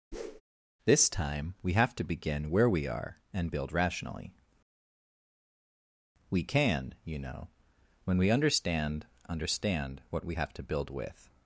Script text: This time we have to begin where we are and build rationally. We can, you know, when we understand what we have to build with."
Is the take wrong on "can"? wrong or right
right